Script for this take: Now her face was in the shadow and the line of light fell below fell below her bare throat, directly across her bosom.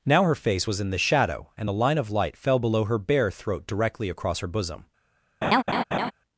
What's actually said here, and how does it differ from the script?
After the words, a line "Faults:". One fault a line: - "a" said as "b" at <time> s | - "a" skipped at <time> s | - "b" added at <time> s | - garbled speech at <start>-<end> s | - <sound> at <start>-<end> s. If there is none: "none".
Now her face was in the shadow and the line of light fell below her bare throat, directly across her bosom.
Faults:
- "fell below" skipped at 2.8 s
- laugh at 5.4-6.1 s